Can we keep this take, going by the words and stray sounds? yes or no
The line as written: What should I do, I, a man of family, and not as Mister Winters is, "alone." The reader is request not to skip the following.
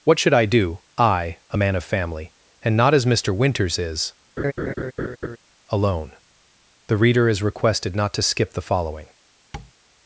no